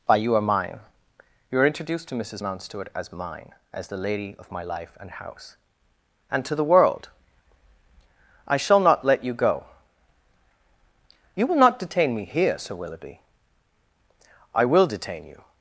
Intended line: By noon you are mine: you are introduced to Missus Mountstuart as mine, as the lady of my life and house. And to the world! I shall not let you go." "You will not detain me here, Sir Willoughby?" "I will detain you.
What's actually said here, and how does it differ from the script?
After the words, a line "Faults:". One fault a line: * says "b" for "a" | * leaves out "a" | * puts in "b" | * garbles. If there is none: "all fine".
By you are mine: you are introduced to Missus Mountstuart as mine, as the lady of my life and house. And to the world! I shall not let you go." "You will not detain me here, Sir Willoughby?" "I will detain you.
Faults:
* leaves out "noon"